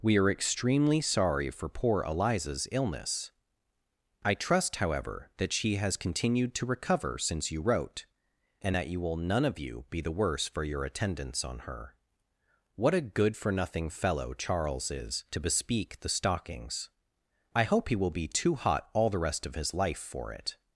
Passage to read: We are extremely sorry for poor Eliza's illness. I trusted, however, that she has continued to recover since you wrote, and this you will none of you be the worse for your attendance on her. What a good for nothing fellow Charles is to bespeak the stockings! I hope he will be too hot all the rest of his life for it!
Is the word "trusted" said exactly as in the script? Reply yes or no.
no